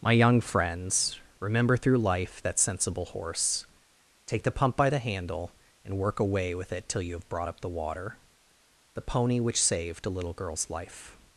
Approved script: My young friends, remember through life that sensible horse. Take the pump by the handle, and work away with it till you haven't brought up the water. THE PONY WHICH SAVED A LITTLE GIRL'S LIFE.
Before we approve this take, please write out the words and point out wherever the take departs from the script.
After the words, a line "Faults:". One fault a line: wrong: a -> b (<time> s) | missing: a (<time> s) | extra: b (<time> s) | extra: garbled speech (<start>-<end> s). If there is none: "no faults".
My young friends, remember through life that sensible horse. Take the pump by the handle, and work away with it till you have brought up the water. THE PONY WHICH SAVED A LITTLE GIRL'S LIFE.
Faults:
wrong: haven't -> have (7.2 s)